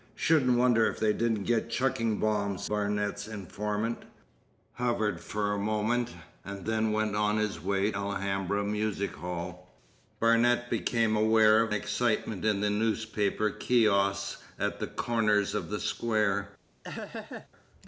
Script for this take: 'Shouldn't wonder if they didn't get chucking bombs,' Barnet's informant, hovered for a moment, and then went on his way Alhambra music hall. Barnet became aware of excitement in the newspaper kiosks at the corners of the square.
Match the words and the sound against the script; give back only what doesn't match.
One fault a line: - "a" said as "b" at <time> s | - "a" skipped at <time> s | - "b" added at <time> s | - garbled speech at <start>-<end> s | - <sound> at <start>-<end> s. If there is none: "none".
- laugh at 16.8-17.5 s